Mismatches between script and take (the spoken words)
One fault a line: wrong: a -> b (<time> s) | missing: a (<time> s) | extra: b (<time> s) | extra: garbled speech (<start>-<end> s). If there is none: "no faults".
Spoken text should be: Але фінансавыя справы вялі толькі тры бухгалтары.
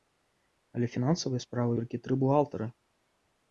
missing: вялі (1.7 s)